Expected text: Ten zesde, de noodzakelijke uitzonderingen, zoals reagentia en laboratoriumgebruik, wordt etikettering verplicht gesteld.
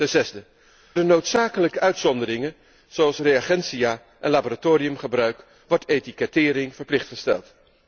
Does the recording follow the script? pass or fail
pass